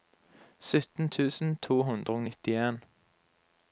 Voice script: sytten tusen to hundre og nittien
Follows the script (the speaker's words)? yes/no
yes